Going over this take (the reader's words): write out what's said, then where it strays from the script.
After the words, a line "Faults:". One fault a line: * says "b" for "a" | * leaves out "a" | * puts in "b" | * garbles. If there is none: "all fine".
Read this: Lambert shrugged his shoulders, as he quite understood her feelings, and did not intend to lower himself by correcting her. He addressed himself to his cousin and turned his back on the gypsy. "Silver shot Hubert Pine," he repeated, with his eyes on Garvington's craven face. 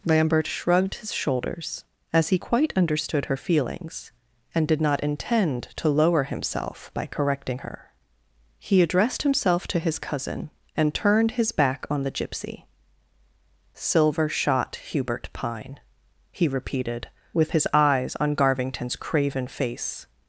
Lambert shrugged his shoulders, as he quite understood her feelings, and did not intend to lower himself by correcting her. He addressed himself to his cousin and turned his back on the gypsy. "Silver shot Hubert Pine," he repeated, with his eyes on Garvington's craven face.
Faults:
all fine